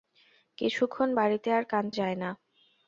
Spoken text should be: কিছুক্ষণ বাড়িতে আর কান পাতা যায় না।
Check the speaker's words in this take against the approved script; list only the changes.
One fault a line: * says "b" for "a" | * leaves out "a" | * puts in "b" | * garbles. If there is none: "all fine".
* leaves out "পাতা"